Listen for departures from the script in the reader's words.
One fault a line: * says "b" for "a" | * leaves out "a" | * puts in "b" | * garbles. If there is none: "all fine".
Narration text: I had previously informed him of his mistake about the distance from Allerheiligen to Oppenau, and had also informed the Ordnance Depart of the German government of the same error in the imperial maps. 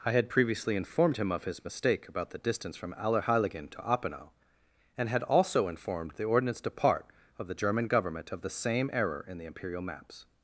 all fine